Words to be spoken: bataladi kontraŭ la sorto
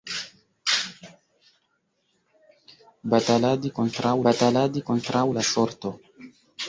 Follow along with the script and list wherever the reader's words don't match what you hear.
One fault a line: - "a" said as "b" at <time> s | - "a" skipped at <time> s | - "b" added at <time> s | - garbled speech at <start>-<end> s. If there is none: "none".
- "bataladi kontraŭ" added at 4.3 s